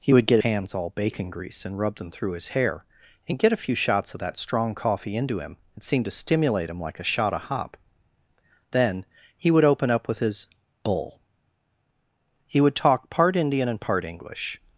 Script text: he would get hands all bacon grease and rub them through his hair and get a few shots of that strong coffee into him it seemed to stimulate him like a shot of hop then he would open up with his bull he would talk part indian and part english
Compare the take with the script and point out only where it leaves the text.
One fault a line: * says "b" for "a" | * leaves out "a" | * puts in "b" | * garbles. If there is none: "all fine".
all fine